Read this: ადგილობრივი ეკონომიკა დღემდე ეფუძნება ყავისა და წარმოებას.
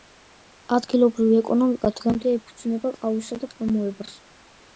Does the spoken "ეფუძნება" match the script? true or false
true